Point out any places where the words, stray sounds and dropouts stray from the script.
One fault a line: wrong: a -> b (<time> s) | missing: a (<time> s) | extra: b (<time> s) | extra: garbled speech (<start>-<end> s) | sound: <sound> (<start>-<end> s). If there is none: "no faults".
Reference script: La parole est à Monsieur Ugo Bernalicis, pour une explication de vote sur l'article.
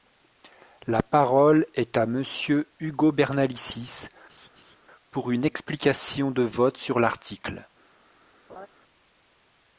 sound: laugh (4.3-4.8 s)
sound: laugh (8.5-8.7 s)